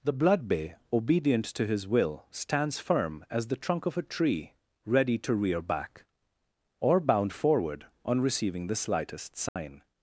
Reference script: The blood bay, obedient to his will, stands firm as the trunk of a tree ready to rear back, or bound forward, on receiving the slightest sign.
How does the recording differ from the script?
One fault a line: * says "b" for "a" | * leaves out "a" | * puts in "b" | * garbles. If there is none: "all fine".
all fine